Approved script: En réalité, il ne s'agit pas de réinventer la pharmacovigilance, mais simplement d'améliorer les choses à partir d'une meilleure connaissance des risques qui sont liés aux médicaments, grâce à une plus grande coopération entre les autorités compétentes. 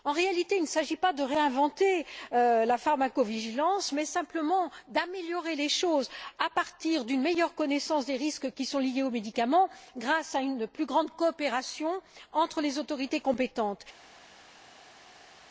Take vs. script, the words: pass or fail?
pass